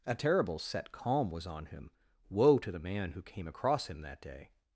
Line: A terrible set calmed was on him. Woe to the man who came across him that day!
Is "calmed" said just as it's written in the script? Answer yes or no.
no